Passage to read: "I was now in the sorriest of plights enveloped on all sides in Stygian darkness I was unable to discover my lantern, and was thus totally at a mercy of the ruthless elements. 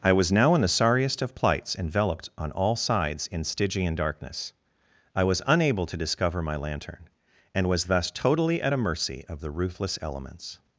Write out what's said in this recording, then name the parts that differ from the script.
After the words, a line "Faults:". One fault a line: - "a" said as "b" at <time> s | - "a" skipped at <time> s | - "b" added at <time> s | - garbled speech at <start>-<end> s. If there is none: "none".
"I was now in the sorriest of plights enveloped on all sides in Stygian darkness I was unable to discover my lantern, and was thus totally at a mercy of the ruthless elements.
Faults:
none